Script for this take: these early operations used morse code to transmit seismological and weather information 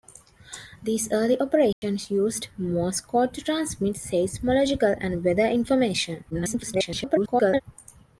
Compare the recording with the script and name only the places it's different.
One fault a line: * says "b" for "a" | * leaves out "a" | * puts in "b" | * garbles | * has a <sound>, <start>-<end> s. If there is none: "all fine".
* has a dropout, 1.7-1.8 s
* garbles